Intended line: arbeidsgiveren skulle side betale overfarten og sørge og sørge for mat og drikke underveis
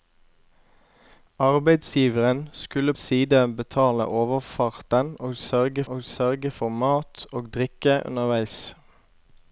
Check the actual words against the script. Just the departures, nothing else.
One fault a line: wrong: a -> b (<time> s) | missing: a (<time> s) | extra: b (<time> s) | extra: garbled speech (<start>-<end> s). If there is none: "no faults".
no faults